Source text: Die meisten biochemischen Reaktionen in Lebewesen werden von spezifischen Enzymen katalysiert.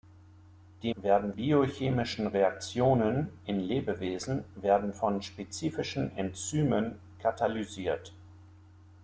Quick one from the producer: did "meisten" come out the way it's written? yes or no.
no